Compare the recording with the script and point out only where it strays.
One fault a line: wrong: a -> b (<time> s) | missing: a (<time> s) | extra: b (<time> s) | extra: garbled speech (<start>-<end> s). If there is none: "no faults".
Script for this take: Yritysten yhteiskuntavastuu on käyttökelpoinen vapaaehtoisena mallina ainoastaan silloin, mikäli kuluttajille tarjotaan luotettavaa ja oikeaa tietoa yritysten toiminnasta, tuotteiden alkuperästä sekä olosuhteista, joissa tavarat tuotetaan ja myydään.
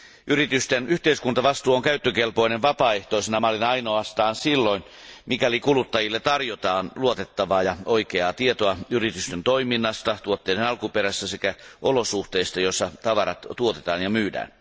no faults